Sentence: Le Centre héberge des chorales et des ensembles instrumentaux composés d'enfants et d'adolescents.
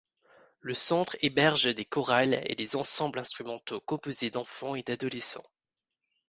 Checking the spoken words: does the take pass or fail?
pass